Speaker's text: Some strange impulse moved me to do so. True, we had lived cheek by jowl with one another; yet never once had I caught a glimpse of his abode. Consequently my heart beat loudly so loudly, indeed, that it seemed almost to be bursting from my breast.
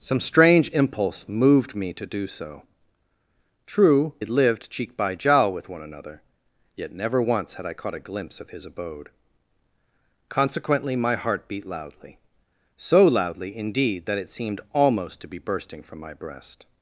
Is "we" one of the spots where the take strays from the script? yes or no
yes